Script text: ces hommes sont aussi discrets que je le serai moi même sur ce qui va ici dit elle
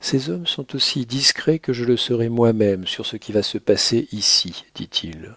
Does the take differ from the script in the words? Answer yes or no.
yes